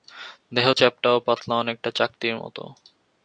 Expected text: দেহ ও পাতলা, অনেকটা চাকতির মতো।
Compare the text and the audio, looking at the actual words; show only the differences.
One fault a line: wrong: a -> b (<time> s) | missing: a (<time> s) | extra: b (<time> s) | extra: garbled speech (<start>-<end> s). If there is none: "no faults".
extra: চ্যাপ্টা (0.7 s)